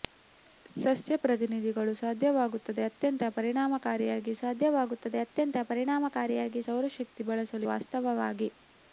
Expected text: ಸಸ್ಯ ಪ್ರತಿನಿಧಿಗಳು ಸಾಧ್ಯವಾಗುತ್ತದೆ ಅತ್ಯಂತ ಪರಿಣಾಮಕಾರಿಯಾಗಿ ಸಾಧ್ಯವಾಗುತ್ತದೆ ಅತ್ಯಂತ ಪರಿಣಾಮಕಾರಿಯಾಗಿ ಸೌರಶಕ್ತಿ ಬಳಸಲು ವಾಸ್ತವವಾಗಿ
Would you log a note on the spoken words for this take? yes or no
no